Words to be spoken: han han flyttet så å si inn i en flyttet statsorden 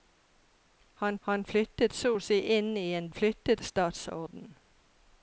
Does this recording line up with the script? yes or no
yes